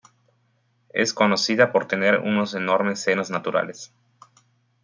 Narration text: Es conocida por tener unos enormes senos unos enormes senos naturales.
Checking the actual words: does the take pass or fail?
fail